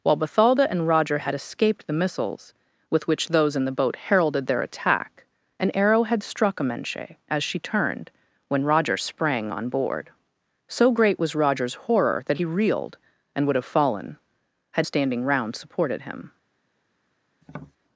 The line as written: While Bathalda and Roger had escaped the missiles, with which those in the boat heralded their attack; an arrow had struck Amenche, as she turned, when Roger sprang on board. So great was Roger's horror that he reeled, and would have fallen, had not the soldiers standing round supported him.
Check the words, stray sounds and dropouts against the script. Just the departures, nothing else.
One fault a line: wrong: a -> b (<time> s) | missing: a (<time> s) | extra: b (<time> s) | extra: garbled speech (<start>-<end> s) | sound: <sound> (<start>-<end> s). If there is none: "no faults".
missing: not the soldiers (14.9 s)
sound: tap (17.4-17.8 s)